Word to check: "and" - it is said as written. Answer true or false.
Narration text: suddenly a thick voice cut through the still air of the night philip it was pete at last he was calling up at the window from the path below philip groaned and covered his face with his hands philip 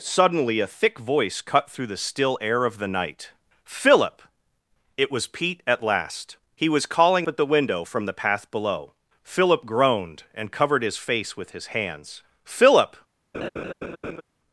true